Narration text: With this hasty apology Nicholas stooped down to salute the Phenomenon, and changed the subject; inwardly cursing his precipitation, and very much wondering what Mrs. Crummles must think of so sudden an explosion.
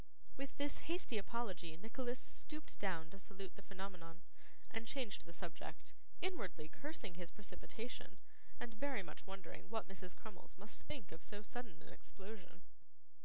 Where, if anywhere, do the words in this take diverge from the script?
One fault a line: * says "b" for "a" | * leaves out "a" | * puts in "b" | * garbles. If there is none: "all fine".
all fine